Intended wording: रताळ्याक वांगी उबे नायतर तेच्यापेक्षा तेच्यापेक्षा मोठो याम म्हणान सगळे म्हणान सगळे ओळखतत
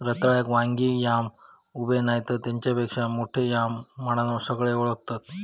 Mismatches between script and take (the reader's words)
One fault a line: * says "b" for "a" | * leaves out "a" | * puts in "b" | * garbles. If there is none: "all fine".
* puts in "याम"
* leaves out "तेच्यापेक्षा"
* leaves out "म्हणान सगळे"